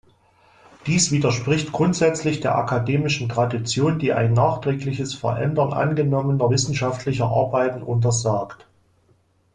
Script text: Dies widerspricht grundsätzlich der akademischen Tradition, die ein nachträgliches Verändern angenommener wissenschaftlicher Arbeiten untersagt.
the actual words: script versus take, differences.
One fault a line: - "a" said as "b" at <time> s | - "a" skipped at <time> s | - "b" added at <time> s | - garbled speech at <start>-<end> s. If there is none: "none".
none